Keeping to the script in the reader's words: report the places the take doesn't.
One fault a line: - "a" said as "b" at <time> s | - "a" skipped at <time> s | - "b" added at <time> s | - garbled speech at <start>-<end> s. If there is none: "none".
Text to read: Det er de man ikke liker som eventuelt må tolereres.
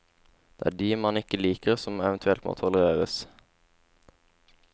none